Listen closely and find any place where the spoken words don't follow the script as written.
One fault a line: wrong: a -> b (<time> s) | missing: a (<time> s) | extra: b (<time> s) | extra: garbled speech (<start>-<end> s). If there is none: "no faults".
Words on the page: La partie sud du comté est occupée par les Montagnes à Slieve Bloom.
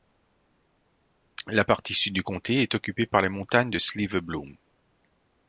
wrong: à -> de (3.7 s)